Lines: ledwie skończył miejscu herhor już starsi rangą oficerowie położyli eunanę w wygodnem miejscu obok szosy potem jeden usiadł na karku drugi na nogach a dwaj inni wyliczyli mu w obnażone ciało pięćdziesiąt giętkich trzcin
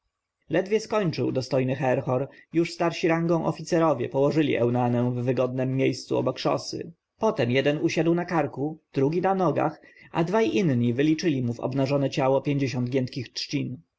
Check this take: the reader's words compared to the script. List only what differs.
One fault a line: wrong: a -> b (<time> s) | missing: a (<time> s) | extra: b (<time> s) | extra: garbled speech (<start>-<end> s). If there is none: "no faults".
wrong: miejscu -> dostojny (1.3 s)